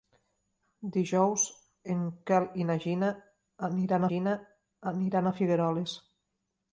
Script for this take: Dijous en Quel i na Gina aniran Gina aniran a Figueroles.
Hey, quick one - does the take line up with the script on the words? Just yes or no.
yes